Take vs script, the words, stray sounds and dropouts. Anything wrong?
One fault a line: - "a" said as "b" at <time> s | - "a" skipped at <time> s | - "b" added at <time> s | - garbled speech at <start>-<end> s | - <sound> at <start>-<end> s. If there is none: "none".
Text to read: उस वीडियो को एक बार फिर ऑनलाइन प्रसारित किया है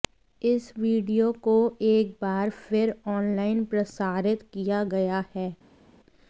- "उस" said as "इस" at 0.4 s
- "गया" added at 4.9 s